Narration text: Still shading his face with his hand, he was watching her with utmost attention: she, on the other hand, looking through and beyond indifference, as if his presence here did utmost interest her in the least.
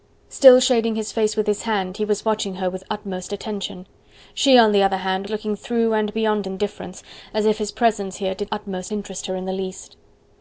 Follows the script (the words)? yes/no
yes